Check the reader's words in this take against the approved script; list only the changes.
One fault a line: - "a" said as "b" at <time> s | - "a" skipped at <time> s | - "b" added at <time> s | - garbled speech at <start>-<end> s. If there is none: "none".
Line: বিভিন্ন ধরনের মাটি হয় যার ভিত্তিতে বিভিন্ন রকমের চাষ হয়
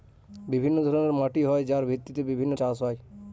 - "রকমের" skipped at 2.5 s